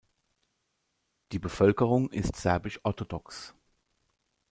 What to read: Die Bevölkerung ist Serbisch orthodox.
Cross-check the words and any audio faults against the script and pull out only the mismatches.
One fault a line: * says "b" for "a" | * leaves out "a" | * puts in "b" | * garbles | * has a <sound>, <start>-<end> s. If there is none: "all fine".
all fine